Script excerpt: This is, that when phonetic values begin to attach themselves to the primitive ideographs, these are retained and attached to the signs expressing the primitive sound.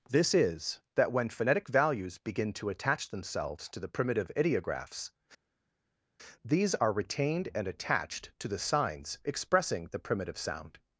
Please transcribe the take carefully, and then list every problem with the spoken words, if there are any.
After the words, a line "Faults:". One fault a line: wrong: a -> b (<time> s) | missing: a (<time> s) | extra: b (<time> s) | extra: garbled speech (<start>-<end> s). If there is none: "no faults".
This is, that when phonetic values begin to attach themselves to the primitive ideographs, these are retained and attached to the signs expressing the primitive sound.
Faults:
no faults